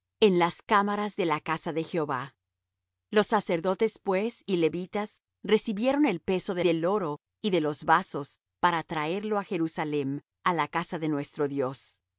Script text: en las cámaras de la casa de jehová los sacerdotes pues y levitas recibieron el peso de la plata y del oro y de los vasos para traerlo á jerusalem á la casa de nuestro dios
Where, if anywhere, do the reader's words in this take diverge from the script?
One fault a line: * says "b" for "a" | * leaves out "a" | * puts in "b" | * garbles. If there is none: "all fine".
* leaves out "la plata y"